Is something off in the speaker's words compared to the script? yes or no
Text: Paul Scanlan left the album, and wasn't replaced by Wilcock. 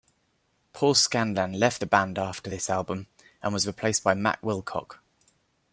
yes